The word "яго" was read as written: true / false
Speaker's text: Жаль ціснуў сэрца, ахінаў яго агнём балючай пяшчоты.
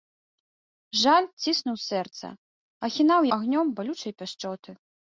false